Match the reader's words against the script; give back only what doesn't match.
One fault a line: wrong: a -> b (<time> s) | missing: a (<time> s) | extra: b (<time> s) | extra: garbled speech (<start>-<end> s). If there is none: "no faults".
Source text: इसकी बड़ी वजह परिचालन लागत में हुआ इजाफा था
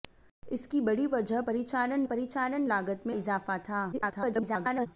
extra: परिचालन (2.0 s)
missing: हुआ (3.1 s)
extra: garbled speech (3.9-4.9 s)